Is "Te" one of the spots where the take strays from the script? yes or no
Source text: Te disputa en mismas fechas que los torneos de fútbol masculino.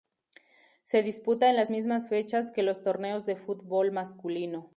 yes